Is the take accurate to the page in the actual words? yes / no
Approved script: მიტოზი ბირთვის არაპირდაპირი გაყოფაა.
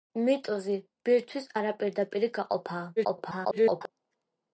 no